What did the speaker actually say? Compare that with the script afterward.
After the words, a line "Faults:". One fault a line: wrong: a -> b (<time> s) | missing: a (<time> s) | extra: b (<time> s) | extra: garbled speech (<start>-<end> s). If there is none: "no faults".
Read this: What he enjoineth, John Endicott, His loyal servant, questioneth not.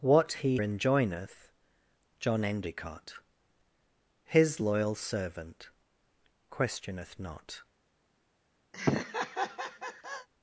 What he enjoineth, John Endicott, His loyal servant, questioneth not.
Faults:
no faults